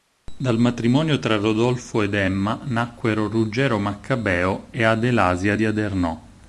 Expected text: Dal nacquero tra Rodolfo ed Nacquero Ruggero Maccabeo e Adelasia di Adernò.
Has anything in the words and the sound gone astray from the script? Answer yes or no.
yes